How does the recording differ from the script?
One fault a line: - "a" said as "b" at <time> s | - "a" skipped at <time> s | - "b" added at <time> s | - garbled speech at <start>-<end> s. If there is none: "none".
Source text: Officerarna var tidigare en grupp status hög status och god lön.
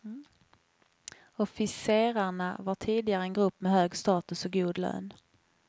- "status" said as "med" at 3.6 s